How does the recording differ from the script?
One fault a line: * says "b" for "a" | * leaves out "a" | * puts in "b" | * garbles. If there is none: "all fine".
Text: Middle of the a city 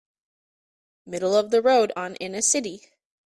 * puts in "road on in"